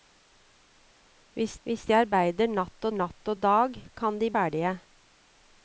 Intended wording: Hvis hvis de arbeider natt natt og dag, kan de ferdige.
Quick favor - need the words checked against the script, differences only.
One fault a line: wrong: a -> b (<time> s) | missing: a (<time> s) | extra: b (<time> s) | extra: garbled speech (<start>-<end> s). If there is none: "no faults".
no faults